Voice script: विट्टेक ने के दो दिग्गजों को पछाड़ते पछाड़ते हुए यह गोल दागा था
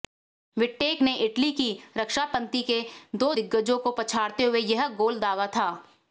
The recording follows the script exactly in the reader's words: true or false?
false